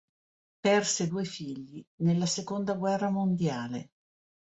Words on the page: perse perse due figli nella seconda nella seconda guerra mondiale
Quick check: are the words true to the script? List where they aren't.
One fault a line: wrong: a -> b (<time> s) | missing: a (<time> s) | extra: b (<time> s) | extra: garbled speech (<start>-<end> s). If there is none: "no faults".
missing: perse (1.1 s)
missing: nella seconda (2.7 s)